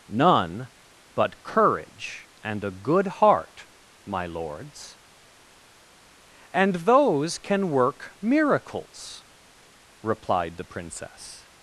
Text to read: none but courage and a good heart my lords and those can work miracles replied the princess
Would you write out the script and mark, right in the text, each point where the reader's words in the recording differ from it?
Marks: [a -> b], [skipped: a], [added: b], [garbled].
none but courage and a good heart my lords and those can work miracles replied the princess